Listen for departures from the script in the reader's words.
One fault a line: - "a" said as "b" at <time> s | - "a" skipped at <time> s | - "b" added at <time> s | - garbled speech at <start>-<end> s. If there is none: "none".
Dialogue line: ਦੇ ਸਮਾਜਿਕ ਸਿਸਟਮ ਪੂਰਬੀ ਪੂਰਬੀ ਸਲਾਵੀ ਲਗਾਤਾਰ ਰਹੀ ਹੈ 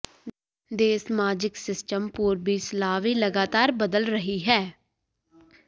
- "ਪੂਰਬੀ" skipped at 2.6 s
- "ਬਦਲ" added at 3.7 s